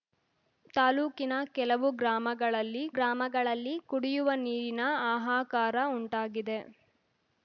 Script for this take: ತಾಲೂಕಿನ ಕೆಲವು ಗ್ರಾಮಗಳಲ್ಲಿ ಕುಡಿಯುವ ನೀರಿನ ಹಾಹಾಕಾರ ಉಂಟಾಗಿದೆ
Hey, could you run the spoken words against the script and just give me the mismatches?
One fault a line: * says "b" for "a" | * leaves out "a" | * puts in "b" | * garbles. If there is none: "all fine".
* puts in "ಗ್ರಾಮಗಳಲ್ಲಿ"